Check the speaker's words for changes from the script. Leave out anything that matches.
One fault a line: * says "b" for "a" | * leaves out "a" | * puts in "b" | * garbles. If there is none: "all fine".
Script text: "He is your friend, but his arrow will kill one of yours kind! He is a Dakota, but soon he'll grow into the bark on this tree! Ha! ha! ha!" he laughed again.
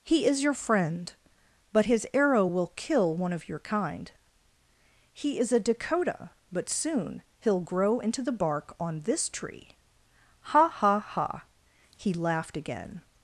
* says "your" for "yours"